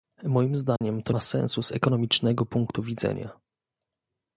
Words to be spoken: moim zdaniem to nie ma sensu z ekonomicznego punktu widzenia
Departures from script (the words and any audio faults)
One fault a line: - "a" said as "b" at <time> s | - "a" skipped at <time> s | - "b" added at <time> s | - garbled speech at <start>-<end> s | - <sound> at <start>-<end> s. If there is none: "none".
- dropout at 0.8-0.8 s
- "nie" skipped at 1.1 s